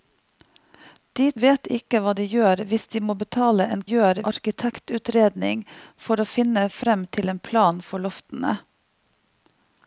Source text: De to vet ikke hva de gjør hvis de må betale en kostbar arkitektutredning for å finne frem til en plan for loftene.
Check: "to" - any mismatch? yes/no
yes